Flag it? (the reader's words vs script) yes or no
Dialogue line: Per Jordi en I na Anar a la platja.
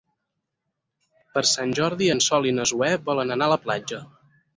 yes